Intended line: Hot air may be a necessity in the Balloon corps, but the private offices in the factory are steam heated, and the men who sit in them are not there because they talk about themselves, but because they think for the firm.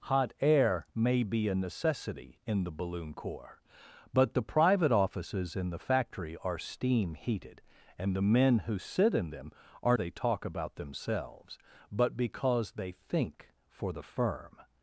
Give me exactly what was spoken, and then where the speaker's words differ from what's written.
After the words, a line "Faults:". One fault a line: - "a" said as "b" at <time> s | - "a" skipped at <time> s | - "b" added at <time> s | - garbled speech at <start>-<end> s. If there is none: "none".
Hot air may be a necessity in the Balloon corps, but the private offices in the factory are steam heated, and the men who sit in them are they talk about themselves, but because they think for the firm.
Faults:
- "not there because" skipped at 10.0 s